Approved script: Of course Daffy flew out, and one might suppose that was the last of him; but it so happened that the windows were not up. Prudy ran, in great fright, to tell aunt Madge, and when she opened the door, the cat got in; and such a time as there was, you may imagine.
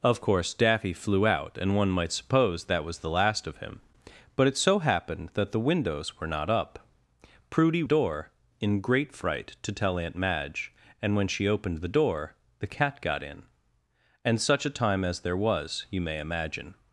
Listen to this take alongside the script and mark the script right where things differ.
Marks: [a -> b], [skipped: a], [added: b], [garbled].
Of course Daffy flew out, and one might suppose that was the last of him; but it so happened that the windows were not up. Prudy [ran, -> door] in great fright, to tell aunt Madge, and when she opened the door, the cat got in; and such a time as there was, you may imagine.